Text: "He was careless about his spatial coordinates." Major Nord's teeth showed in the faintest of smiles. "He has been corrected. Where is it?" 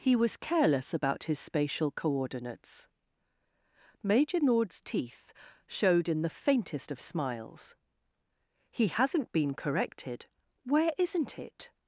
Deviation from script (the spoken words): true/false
true